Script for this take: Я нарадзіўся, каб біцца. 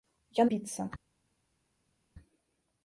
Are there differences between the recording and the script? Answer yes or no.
yes